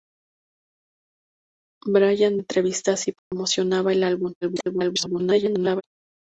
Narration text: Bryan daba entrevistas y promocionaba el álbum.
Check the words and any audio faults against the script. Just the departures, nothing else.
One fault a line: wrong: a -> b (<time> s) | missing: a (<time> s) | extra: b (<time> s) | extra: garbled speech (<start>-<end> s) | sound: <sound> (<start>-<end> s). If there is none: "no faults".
missing: daba (2.4 s)
sound: dropout (3.2-3.3 s)
extra: garbled speech (4.4-5.8 s)